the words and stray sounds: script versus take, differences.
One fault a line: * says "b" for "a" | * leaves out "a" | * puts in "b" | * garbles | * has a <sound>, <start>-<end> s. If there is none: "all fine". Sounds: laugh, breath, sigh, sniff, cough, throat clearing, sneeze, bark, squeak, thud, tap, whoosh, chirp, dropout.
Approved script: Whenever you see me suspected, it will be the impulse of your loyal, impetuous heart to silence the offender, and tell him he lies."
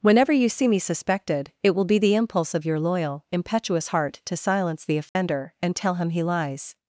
* has a dropout, 5.1-5.2 s